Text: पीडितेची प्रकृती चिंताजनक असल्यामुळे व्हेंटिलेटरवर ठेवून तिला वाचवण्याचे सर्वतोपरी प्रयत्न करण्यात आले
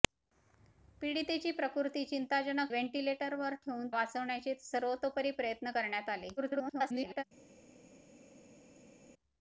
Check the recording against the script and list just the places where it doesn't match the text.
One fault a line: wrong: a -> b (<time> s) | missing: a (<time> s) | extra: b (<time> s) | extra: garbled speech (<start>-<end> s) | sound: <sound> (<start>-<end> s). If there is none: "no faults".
missing: असल्यामुळे (2.7 s)
missing: तिला (3.9 s)
extra: garbled speech (6.4-7.2 s)